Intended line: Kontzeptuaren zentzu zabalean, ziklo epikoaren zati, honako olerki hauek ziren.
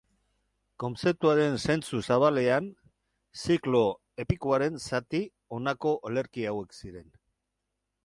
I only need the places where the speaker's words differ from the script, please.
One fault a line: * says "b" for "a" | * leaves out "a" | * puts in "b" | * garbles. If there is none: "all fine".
all fine